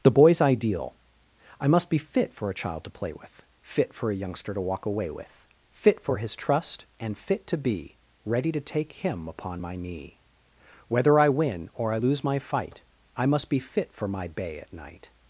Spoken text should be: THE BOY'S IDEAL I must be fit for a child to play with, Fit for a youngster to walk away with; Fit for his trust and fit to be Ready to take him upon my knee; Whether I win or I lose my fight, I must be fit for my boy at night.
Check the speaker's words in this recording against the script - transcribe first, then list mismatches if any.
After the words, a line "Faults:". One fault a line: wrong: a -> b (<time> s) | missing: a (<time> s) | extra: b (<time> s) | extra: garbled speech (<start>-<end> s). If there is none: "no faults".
THE BOY'S IDEAL I must be fit for a child to play with, Fit for a youngster to walk away with; Fit for his trust and fit to be Ready to take him upon my knee; Whether I win or I lose my fight, I must be fit for my bay at night.
Faults:
wrong: boy -> bay (14.3 s)